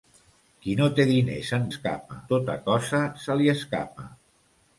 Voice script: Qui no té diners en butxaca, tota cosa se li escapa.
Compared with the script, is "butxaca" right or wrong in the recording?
wrong